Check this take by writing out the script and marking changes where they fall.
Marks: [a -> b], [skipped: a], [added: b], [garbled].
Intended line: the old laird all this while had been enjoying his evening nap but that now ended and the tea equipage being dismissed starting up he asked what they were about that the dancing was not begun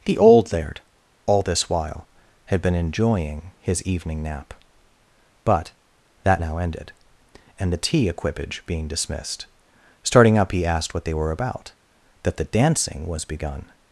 the old laird all this while had been enjoying his evening nap but that now ended and the tea equipage being dismissed starting up he asked what they were about that the dancing was [skipped: not] begun